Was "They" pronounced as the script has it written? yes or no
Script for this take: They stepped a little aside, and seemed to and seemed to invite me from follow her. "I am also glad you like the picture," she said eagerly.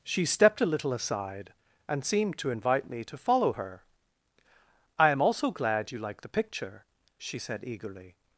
no